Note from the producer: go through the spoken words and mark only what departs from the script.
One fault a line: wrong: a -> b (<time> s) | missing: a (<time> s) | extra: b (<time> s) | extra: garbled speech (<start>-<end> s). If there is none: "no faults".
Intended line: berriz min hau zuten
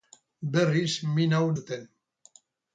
no faults